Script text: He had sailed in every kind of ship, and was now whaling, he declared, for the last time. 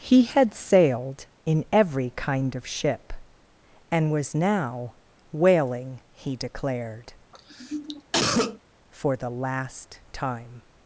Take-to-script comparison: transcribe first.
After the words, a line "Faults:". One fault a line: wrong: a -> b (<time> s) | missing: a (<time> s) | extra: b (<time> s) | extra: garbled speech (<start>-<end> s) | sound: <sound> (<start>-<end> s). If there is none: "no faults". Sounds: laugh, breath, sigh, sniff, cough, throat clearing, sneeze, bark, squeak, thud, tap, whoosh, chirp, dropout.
He had sailed in every kind of ship, and was now whaling, he declared, for the last time.
Faults:
sound: cough (7.3-8.6 s)